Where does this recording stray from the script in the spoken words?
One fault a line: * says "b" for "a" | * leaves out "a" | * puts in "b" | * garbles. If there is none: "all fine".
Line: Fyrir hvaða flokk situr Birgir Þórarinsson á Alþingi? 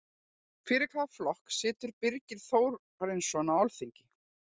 all fine